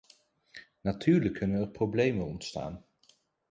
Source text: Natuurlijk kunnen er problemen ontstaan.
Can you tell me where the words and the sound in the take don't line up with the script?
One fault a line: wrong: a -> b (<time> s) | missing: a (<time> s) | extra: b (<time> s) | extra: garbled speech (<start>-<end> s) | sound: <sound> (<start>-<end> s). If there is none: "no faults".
no faults